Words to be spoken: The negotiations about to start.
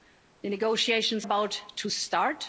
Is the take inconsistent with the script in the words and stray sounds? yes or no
no